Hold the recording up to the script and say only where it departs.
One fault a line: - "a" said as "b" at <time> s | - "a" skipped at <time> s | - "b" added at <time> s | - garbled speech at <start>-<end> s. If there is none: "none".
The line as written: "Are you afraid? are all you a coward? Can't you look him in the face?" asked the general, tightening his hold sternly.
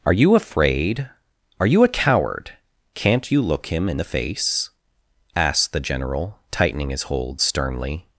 - "all" skipped at 1.7 s